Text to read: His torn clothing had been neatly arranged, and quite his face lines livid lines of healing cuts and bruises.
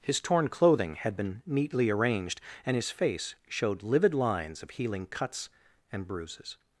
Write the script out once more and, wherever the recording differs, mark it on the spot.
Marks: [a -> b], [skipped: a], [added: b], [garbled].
His torn clothing had been neatly arranged, and [skipped: quite] his face [lines -> showed] livid lines of healing cuts and bruises.